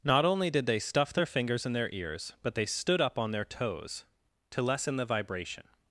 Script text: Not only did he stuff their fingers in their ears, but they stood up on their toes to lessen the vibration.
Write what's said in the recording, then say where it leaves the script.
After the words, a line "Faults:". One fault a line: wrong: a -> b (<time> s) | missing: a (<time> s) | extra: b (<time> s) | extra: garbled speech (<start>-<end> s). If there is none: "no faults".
Not only did they stuff their fingers in their ears, but they stood up on their toes to lessen the vibration.
Faults:
wrong: he -> they (0.7 s)